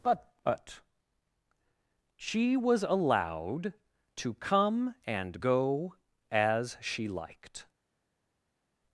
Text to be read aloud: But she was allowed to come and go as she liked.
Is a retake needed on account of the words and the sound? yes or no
yes